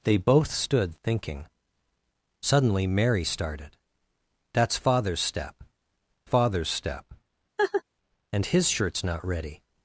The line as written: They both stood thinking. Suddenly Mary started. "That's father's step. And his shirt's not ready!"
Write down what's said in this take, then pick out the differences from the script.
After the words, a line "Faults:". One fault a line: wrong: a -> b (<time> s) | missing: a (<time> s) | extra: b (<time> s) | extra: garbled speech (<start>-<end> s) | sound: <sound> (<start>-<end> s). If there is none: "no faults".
They both stood thinking. Suddenly Mary started. "That's father's step father's step. And his shirt's not ready!"
Faults:
extra: father's step (6.2 s)
sound: laugh (7.6-7.8 s)